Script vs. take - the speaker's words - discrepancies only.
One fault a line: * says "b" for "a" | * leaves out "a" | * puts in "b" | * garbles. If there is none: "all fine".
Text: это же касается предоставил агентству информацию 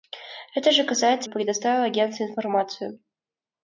all fine